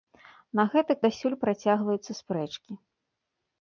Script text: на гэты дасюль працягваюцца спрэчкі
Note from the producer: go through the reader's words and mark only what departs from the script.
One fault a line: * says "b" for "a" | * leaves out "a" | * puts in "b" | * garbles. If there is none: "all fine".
all fine